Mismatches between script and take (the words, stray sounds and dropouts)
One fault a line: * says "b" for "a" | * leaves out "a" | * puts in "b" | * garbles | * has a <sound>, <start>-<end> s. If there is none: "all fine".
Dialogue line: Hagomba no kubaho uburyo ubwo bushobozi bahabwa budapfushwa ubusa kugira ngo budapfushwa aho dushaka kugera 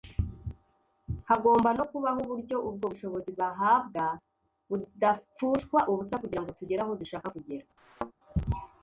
* says "tugere" for "budapfushwa"
* has a thud, 7.8-8.1 s